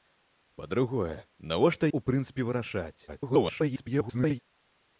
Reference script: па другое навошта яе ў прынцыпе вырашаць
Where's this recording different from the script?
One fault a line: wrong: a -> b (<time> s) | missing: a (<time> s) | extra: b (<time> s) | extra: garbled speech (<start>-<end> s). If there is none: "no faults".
missing: яе (1.9 s)
extra: garbled speech (3.1-4.4 s)